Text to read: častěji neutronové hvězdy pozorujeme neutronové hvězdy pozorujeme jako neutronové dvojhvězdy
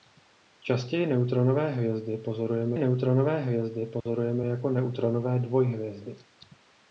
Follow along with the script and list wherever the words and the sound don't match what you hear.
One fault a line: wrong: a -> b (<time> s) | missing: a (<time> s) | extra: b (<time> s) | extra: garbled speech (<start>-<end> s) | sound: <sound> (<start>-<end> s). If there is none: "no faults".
sound: dropout (4.0-4.1 s)